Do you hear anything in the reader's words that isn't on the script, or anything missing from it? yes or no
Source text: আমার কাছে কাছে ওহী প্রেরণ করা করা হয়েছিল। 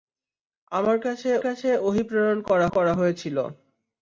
no